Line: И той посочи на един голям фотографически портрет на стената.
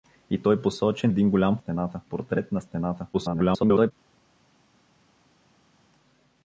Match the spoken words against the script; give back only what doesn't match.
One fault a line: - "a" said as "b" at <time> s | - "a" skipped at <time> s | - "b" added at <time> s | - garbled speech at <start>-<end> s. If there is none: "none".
- "на" skipped at 1.1 s
- "фотографически" said as "стената" at 1.6 s
- garbled speech at 3.1-3.9 s